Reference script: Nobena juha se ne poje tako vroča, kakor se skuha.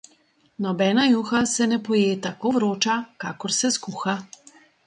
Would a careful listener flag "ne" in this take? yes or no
no